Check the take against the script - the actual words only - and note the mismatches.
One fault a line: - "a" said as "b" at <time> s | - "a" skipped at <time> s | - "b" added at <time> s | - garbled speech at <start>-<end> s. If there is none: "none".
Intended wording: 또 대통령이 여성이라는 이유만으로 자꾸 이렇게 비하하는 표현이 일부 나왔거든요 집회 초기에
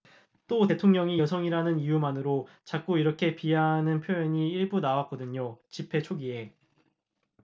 none